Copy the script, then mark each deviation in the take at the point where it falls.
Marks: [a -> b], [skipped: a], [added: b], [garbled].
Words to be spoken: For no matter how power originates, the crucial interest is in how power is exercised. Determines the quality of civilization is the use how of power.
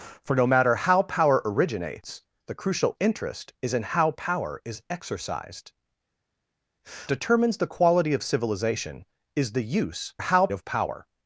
For no matter how power originates, the crucial interest is in how power is exercised. Determines the quality of civilization is the use how of power.